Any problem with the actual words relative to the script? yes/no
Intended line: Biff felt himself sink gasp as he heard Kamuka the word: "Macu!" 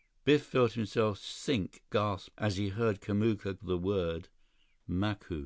no